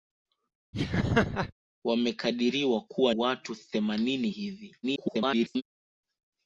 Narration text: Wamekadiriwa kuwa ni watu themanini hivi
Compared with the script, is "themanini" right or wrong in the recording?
right